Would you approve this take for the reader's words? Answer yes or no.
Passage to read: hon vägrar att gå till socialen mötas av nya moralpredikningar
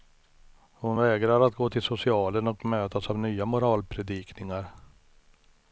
no